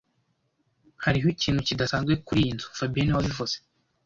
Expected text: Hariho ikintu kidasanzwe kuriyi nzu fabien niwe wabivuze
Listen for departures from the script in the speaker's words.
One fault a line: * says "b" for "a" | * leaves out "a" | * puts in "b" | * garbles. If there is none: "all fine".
all fine